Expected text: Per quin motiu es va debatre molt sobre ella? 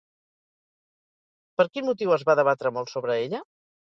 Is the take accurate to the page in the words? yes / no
yes